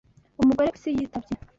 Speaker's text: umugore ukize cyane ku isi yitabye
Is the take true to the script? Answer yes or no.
no